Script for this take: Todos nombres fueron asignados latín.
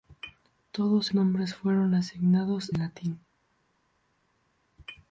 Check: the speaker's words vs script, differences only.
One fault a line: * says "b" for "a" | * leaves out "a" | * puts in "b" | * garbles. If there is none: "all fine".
all fine